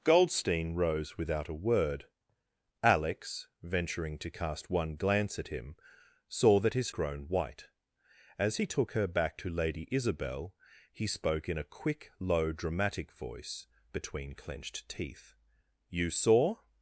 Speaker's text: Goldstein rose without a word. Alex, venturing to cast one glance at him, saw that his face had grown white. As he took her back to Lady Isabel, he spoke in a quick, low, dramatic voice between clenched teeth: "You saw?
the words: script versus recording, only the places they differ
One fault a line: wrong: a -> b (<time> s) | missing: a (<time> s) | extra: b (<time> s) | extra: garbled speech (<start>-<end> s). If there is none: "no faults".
missing: face had (6.9 s)